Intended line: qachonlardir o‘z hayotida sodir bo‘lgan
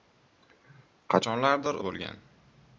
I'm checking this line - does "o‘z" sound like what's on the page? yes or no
no